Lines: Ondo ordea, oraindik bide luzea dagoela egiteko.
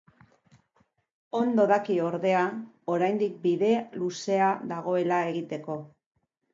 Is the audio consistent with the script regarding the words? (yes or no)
no